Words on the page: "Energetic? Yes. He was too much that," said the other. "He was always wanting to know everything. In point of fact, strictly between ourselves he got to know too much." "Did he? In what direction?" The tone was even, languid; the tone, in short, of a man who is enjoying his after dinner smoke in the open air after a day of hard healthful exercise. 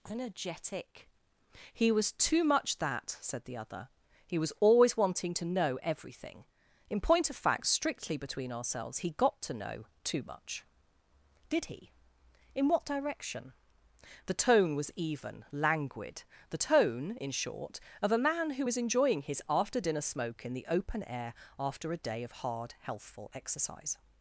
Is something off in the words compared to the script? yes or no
yes